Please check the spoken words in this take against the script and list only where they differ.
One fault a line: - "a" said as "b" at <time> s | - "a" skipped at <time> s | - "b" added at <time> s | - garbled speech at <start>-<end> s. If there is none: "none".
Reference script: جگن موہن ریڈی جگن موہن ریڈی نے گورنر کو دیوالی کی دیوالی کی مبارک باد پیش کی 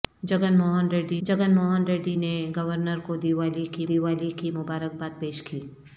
none